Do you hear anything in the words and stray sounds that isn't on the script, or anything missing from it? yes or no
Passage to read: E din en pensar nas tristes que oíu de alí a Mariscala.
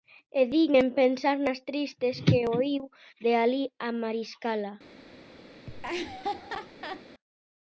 yes